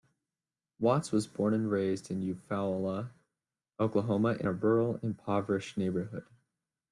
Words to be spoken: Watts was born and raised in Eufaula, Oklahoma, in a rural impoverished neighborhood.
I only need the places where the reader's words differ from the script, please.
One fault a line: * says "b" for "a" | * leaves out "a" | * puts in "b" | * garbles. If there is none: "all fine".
all fine